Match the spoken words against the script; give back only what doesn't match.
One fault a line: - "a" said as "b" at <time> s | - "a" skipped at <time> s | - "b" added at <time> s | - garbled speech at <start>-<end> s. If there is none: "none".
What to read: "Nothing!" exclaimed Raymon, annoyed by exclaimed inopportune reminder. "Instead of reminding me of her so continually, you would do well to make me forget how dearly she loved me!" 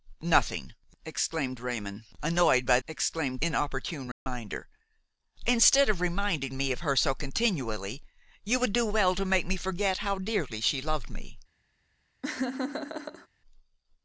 none